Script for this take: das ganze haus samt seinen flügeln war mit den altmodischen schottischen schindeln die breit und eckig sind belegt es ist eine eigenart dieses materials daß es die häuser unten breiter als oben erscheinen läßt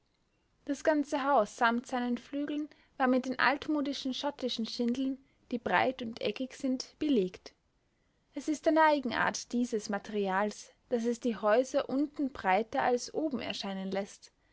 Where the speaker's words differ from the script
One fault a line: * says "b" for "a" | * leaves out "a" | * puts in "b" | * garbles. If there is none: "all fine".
all fine